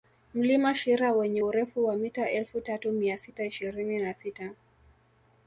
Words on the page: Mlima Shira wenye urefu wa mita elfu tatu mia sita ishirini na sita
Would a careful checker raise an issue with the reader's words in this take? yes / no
no